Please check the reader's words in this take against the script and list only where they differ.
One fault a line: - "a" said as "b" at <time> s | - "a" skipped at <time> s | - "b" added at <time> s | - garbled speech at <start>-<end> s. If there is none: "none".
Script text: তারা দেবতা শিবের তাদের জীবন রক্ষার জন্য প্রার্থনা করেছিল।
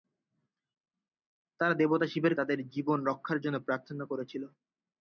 none